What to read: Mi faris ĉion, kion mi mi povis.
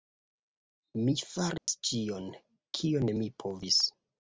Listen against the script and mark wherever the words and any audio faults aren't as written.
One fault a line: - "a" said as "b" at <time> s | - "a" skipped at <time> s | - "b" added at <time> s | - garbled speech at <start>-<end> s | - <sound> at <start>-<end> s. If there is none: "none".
- dropout at 1.6-1.7 s
- "mi" skipped at 3.3 s